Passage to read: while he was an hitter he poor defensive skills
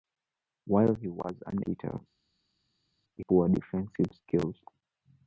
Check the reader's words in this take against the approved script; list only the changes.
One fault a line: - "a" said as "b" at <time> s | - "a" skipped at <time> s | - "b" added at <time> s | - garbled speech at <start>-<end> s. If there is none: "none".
none